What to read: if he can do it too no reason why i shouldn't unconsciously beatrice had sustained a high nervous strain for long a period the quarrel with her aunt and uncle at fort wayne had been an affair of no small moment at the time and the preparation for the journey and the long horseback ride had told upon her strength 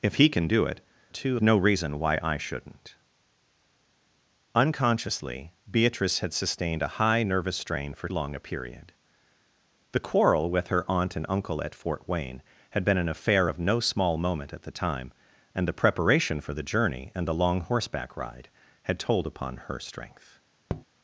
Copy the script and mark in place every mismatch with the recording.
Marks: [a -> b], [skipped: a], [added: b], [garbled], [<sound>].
if he can do it too no reason why i shouldn't unconsciously beatrice had sustained a high nervous strain for long a period the quarrel with her aunt and uncle at fort wayne had been an affair of no small moment at the time and the preparation for the journey and the long horseback ride had told upon her strength [tap]